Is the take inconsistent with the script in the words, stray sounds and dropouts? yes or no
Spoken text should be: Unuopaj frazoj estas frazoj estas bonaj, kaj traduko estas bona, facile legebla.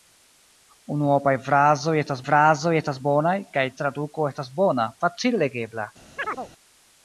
yes